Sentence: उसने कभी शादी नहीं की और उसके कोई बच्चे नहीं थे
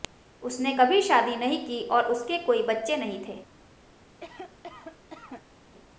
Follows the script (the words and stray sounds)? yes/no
no